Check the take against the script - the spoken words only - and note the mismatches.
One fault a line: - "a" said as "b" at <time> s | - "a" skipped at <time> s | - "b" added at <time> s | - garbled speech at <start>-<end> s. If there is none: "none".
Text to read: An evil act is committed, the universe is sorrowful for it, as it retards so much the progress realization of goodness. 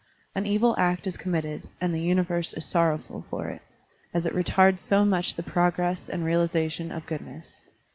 - "and" added at 1.8 s
- "and" added at 6.1 s